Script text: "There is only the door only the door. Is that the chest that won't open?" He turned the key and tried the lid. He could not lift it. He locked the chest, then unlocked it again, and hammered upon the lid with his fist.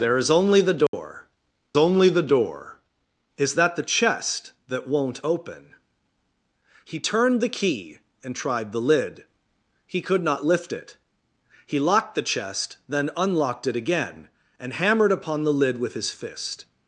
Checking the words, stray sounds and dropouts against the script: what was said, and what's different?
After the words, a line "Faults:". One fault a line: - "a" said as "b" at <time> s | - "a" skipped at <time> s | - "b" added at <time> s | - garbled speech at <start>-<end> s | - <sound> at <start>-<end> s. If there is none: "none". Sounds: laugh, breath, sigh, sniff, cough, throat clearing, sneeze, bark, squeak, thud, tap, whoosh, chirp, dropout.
"There is only the door only the door. Is that the chest that won't open?" He turned the key and tried the lid. He could not lift it. He locked the chest, then unlocked it again, and hammered upon the lid with his fist.
Faults:
- dropout at 0.9-0.9 s